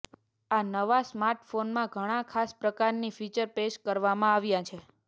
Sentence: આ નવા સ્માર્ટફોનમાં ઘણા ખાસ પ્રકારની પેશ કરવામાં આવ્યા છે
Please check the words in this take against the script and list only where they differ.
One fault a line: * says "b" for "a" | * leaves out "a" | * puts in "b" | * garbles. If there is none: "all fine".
* puts in "ફીચર"